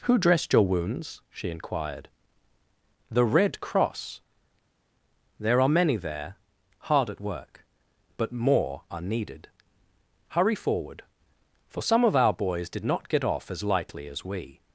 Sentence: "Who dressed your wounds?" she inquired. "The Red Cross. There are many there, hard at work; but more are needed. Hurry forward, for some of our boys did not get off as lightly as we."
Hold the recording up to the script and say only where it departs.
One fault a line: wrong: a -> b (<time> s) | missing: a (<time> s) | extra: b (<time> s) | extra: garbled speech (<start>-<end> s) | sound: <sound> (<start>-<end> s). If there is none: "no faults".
no faults